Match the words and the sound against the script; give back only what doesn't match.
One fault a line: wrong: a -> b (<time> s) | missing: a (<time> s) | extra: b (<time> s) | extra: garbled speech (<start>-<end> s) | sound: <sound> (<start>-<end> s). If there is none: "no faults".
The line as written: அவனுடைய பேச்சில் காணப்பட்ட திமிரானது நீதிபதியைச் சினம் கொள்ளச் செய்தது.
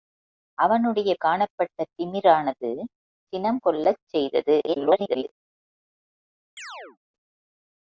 missing: பேச்சில் (1.1 s)
missing: நீதிபதியைச் (2.7 s)
extra: garbled speech (4.7-5.2 s)
sound: chirp (6.6-7.0 s)